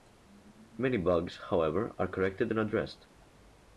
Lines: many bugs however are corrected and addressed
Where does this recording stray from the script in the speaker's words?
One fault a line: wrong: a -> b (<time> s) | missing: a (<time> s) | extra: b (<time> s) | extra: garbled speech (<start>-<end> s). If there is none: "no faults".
no faults